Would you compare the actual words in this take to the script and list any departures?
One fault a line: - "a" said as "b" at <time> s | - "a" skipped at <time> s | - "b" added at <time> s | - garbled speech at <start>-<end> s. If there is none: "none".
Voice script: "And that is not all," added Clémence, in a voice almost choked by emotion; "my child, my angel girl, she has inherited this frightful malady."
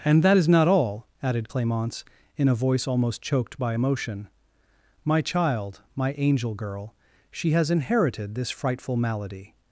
none